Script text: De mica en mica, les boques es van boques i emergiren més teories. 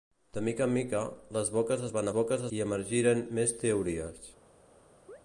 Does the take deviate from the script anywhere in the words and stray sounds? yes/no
yes